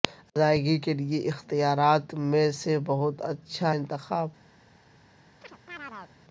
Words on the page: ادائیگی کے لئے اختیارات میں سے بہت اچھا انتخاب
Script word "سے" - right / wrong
right